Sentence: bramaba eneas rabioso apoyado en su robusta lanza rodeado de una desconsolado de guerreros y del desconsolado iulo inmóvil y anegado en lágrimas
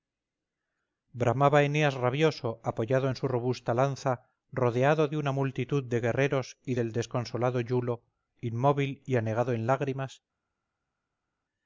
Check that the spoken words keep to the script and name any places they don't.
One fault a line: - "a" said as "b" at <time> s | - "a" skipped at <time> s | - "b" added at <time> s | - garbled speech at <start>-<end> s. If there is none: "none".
- "desconsolado" said as "multitud" at 5.3 s